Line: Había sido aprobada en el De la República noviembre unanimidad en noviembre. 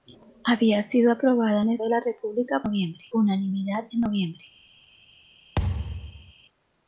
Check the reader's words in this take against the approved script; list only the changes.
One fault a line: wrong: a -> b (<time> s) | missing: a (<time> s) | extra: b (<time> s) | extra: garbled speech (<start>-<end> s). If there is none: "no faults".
no faults